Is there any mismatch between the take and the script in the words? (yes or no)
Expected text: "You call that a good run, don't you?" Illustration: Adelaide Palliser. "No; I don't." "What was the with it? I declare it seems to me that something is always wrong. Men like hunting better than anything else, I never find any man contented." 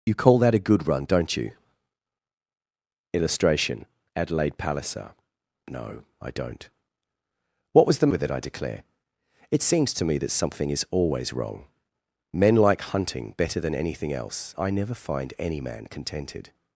no